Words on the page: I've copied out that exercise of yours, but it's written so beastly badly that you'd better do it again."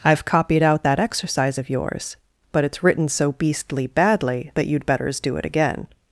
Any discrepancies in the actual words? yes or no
yes